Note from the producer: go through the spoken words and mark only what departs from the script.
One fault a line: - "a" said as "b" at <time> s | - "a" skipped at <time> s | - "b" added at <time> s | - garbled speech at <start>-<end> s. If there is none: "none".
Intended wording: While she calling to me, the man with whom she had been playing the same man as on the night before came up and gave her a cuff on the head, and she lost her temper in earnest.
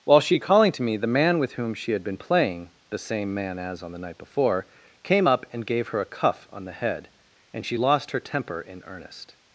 none